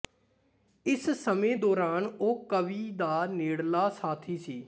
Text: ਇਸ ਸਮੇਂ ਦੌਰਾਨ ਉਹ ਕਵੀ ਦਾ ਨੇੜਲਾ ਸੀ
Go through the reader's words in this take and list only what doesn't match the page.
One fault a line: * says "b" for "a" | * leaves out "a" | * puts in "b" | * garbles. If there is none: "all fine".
* puts in "ਸਾਥੀ"